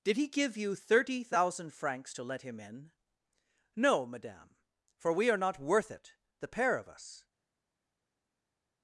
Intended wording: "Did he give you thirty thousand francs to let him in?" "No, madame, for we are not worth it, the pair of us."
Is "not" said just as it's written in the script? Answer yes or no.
yes